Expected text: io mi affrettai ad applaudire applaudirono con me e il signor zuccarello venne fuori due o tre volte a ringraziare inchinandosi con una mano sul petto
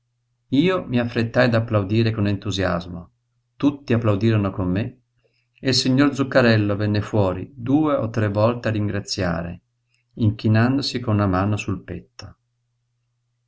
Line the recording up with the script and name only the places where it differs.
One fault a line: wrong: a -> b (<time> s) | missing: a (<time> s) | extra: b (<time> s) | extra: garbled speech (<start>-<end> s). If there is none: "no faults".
extra: con entusiasmo tutti (2.1 s)